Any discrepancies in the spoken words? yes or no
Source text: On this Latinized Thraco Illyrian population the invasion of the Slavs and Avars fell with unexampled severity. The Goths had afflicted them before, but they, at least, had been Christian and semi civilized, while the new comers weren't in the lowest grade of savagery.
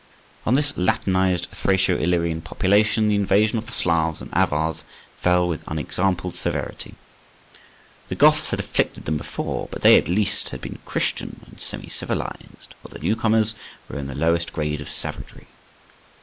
yes